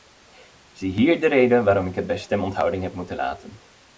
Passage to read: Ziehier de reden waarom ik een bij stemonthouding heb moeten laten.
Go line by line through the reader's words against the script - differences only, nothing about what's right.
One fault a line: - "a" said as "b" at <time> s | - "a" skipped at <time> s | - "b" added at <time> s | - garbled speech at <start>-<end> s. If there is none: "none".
- "een" said as "het" at 1.9 s